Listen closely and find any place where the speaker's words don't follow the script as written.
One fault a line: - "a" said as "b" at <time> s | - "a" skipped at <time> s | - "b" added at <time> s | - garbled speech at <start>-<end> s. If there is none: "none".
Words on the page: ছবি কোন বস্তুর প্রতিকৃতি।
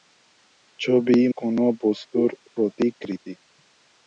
none